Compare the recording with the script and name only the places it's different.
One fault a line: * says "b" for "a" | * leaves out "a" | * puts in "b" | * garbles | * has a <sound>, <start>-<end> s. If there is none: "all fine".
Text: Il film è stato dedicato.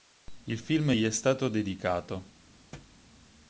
* puts in "gli"
* has a thud, 2.7-3.0 s